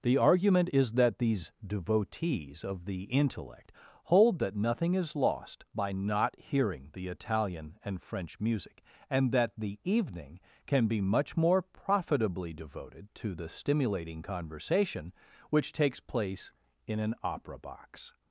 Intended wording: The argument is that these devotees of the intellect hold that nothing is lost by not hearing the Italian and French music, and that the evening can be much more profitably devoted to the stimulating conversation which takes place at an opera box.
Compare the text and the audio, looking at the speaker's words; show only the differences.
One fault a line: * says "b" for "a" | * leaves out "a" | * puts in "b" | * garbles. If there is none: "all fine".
* says "in" for "at"